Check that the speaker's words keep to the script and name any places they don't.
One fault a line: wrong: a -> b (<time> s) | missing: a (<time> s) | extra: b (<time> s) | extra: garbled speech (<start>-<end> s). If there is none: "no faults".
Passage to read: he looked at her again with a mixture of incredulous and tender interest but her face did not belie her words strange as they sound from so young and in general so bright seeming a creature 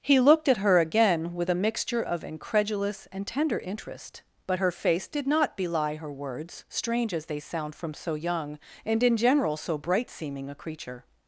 no faults